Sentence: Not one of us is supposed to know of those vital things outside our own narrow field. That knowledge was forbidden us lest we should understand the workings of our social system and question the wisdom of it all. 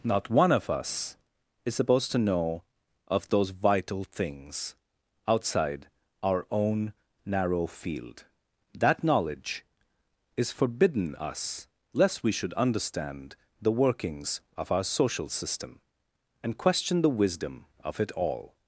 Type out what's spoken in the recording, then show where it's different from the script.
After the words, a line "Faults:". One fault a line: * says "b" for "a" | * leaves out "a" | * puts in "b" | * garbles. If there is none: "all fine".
Not one of us is supposed to know of those vital things outside our own narrow field. That knowledge is forbidden us lest we should understand the workings of our social system and question the wisdom of it all.
Faults:
* says "is" for "was"